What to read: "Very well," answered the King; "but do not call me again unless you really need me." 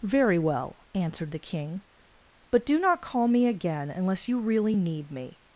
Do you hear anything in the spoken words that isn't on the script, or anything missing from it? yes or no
no